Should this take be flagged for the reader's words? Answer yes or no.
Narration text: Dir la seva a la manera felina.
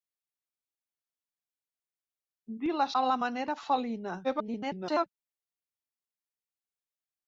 yes